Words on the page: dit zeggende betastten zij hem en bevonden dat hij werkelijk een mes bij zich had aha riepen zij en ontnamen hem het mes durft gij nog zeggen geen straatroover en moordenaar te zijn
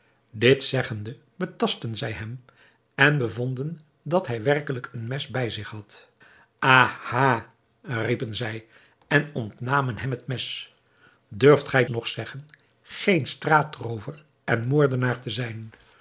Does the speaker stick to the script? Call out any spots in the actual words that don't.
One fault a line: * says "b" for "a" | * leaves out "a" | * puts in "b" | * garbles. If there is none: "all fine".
all fine